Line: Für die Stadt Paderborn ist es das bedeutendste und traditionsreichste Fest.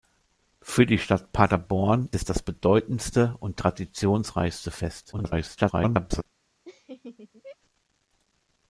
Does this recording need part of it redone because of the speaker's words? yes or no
yes